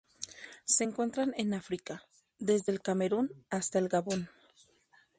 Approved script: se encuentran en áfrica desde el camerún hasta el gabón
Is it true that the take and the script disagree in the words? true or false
false